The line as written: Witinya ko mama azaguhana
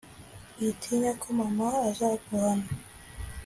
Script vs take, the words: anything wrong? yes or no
no